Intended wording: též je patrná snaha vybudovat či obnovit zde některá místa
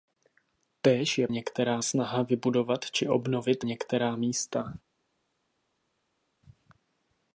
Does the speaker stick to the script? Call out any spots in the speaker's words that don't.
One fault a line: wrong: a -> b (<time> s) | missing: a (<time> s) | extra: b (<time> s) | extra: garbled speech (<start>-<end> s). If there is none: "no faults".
wrong: patrná -> některá (1.3 s)
missing: zde (3.6 s)